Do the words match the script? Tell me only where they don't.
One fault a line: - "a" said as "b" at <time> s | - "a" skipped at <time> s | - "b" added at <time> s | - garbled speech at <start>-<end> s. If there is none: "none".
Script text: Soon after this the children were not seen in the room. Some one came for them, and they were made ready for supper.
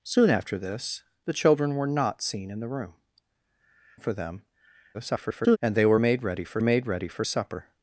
- "Some one came" skipped at 3.0 s
- garbled speech at 4.9-5.6 s
- "made ready for" added at 6.6 s